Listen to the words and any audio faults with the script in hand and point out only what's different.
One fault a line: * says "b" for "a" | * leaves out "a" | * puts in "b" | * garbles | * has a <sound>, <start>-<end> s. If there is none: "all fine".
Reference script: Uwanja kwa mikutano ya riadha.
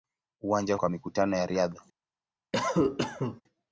* has a cough, 2.5-3.4 s